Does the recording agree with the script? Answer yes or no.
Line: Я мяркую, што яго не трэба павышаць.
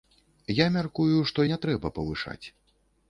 no